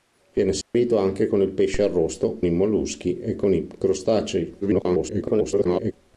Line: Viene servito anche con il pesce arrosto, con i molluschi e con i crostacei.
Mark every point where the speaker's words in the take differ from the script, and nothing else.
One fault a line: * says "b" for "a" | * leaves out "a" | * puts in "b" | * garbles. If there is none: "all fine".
* leaves out "con"
* garbles